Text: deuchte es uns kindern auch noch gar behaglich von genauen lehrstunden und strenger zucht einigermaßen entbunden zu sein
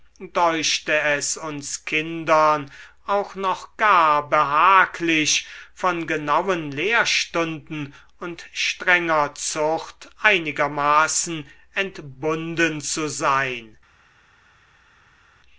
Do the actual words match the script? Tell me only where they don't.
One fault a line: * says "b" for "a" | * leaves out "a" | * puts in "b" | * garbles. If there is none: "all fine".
all fine